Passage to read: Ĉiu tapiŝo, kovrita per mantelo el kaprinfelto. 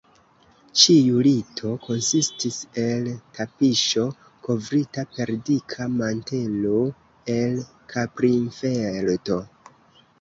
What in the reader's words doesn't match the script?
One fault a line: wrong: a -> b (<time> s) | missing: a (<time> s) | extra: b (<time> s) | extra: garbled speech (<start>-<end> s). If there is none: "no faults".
extra: lito konsistis el (1.2 s)
extra: dika (5.5 s)